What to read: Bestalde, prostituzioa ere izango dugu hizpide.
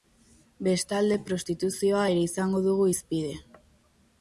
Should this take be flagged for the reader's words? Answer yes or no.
no